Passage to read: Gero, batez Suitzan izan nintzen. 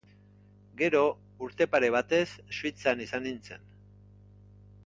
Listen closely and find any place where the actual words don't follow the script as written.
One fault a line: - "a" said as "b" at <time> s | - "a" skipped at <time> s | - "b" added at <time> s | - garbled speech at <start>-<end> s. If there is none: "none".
- "urte pare" added at 1.5 s